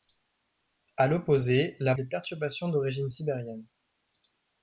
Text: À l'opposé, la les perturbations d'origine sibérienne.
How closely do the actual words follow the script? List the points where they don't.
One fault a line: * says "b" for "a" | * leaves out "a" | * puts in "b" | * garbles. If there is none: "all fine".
all fine